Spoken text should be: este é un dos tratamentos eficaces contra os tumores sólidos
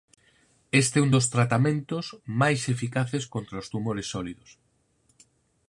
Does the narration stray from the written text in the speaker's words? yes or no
yes